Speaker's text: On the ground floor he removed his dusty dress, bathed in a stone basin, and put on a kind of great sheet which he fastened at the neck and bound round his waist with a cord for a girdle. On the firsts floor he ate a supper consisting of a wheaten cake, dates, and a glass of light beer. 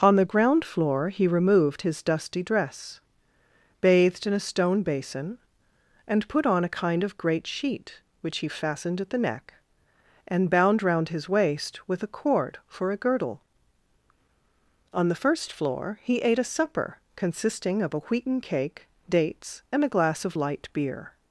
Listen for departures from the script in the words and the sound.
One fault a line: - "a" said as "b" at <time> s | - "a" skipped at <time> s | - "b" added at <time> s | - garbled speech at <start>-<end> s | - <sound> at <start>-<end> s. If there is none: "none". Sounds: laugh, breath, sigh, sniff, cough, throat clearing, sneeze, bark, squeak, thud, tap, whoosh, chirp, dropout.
- "firsts" said as "first" at 15.2 s